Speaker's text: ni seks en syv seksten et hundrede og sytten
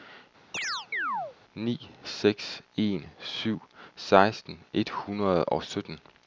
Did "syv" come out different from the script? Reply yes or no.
no